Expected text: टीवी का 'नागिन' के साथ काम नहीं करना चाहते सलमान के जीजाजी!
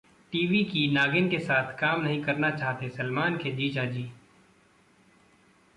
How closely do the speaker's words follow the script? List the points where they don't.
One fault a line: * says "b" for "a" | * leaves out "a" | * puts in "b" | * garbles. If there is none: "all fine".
* says "की" for "का"